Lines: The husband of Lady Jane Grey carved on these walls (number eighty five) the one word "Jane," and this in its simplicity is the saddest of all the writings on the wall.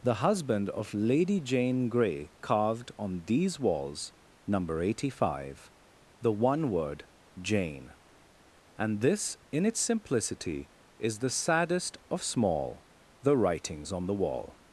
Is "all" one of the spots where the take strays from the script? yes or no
yes